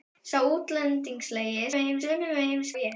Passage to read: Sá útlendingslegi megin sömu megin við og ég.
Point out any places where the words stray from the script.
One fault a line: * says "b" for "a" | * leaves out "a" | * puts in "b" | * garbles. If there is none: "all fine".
all fine